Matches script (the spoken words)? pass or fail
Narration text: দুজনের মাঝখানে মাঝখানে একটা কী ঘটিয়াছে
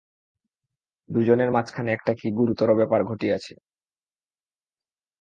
fail